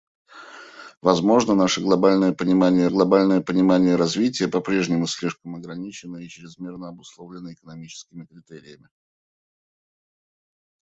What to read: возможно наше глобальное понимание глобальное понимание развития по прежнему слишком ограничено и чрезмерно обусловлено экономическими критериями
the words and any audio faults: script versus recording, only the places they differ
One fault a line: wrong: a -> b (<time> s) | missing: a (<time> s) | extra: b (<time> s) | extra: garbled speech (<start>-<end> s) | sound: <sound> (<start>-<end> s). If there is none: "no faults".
no faults